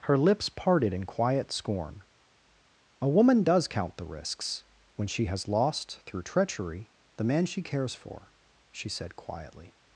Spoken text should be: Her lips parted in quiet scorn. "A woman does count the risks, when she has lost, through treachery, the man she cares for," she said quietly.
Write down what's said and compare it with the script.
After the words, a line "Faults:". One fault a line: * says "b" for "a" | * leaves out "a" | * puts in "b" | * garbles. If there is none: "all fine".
Her lips parted in quiet scorn. "A woman does count the risks, when she has lost, through treachery, the man she cares for," she said quietly.
Faults:
all fine